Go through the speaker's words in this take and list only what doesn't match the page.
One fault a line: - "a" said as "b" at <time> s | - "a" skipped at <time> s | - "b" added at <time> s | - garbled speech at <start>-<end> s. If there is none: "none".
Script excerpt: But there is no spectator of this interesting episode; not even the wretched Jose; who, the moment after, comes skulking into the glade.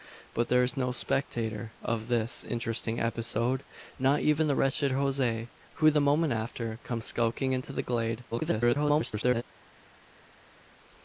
- garbled speech at 8.3-9.4 s